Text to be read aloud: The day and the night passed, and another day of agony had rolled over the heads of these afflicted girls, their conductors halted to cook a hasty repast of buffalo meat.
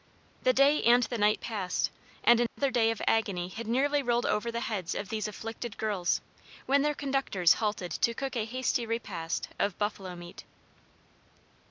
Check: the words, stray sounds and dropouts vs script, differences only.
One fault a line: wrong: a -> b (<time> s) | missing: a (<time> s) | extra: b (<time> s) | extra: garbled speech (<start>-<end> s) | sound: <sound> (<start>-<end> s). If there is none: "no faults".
sound: dropout (2.5-2.6 s)
extra: nearly (3.7 s)
extra: when (6.7 s)